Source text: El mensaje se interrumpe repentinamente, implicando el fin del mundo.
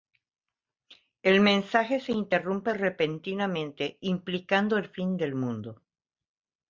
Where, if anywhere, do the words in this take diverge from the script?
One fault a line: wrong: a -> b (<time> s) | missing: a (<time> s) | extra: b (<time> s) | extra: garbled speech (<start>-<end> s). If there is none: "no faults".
no faults